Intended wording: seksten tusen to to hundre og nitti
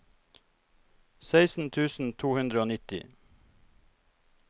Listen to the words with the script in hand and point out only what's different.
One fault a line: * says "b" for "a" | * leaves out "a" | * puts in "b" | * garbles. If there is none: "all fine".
* leaves out "to"